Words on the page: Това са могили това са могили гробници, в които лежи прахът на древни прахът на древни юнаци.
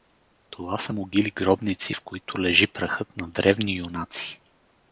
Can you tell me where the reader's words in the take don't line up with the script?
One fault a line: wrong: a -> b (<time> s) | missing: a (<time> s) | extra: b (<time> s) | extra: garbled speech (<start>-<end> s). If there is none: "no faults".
missing: това са могили (1.3 s)
missing: прахът на древни (3.8 s)